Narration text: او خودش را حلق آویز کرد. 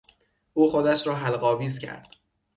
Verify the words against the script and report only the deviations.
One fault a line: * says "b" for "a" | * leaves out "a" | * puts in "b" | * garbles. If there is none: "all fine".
all fine